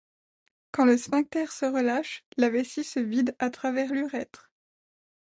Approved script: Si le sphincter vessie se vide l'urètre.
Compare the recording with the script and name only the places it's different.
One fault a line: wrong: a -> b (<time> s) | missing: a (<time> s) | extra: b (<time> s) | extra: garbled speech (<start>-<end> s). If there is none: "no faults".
wrong: Si -> Quand (0.7 s)
extra: se relâche la (1.5 s)
extra: à travers (3.4 s)